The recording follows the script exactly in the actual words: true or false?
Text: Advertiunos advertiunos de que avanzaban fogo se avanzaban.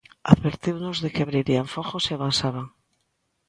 false